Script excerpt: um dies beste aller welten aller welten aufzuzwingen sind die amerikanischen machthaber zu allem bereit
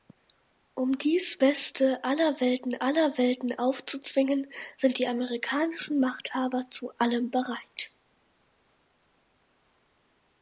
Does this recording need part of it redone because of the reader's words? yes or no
no